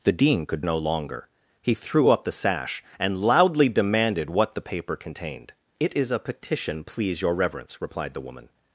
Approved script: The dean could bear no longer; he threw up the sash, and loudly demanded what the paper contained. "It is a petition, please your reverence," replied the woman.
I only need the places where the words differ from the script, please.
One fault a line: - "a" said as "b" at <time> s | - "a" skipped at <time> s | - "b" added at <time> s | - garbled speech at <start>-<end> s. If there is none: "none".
- "bear" skipped at 0.6 s